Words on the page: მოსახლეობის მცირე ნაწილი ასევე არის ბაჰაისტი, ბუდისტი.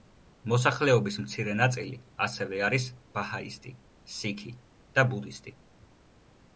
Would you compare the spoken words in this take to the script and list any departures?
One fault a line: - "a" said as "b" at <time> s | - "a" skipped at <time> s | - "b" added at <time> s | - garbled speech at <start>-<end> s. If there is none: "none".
- "სიქი და" added at 4.2 s